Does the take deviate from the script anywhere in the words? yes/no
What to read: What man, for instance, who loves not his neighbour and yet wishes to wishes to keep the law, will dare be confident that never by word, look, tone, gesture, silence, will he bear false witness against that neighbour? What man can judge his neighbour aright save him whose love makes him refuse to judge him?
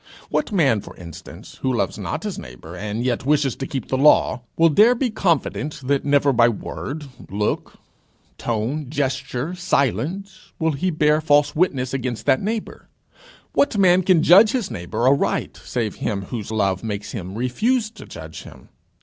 yes